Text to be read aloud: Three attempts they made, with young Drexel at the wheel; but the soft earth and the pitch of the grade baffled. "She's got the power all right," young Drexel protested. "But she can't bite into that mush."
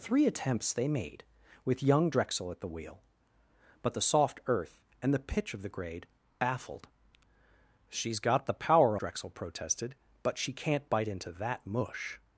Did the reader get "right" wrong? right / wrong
wrong